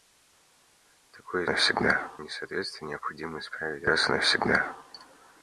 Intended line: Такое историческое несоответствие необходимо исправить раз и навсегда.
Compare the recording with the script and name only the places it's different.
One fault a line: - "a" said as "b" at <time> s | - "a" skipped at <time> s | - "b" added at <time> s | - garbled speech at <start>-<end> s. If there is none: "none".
- "историческое" said as "навсегда" at 1.5 s